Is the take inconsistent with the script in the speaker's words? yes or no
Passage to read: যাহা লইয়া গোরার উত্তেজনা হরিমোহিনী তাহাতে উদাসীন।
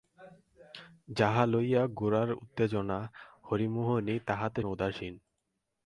no